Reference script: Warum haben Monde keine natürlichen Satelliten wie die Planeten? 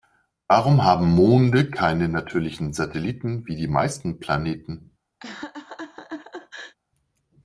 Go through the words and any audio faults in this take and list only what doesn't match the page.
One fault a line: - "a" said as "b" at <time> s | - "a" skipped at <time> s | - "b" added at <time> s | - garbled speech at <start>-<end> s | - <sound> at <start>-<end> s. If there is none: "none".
- "meisten" added at 3.7 s
- laugh at 5.2-6.8 s